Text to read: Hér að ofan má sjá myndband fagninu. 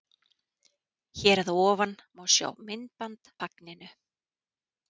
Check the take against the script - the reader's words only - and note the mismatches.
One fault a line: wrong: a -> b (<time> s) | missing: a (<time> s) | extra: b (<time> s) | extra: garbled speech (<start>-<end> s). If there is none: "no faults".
no faults